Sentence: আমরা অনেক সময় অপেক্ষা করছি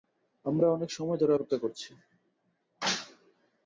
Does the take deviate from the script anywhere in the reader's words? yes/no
yes